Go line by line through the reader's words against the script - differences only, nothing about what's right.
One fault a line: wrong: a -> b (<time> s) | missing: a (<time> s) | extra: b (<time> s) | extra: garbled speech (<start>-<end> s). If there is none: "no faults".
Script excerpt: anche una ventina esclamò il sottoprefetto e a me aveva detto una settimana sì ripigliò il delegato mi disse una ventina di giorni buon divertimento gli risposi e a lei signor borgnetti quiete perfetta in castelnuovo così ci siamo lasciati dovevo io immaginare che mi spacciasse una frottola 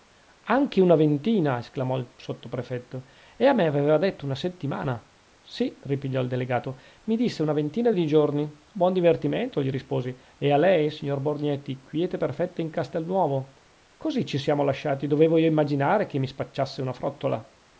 no faults